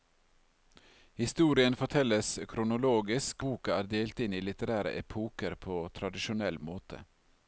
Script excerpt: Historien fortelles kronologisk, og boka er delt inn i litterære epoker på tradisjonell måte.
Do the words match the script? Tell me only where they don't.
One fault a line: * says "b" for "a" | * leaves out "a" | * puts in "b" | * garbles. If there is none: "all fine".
* leaves out "og"